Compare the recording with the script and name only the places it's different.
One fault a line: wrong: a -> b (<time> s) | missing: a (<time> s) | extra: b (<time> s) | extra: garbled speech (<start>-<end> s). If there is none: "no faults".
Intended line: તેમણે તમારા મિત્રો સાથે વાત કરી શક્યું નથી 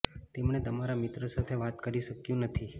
no faults